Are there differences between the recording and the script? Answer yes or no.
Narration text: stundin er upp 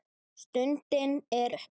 no